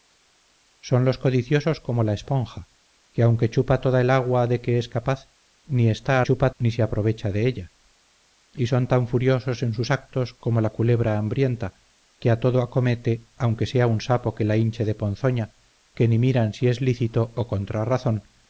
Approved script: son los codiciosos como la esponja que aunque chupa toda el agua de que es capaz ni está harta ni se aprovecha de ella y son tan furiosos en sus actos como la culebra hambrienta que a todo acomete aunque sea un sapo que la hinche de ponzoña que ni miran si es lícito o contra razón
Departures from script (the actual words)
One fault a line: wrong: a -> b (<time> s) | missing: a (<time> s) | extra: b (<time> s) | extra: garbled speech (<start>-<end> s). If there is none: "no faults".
wrong: harta -> chupa (6.2 s)